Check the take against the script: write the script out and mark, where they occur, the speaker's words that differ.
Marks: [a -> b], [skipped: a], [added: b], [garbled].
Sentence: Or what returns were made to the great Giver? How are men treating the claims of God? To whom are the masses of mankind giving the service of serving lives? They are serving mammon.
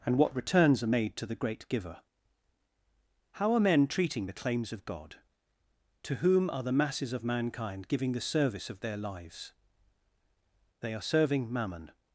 [Or -> And] what returns [were -> are] made to the great Giver? How are men treating the claims of God? To whom are the masses of mankind giving the service of [serving -> their] lives? They are serving mammon.